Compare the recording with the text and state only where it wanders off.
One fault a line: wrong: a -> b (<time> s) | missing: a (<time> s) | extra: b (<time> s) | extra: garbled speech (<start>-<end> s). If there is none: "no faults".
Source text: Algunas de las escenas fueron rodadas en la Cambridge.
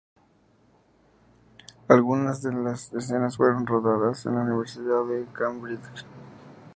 extra: universidad de (4.4 s)